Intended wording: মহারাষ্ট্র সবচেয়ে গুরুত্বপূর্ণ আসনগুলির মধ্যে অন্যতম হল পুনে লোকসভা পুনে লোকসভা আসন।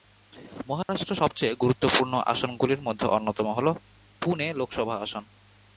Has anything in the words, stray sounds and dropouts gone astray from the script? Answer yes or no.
yes